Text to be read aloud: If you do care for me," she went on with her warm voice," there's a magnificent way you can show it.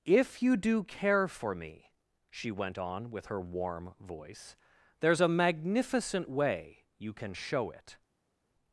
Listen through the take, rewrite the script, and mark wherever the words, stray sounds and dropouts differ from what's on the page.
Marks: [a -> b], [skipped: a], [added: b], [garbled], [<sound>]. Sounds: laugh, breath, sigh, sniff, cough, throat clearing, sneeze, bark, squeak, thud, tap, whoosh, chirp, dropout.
If you do care for me," she went on with her warm voice," there's a magnificent way you can show it.